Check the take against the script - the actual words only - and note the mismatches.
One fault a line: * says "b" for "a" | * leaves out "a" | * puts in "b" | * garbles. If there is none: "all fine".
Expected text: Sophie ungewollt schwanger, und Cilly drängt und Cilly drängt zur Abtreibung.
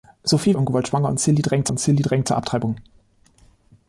all fine